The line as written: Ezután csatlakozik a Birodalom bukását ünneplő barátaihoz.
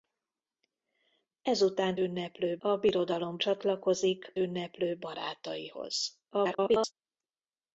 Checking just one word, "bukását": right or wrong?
wrong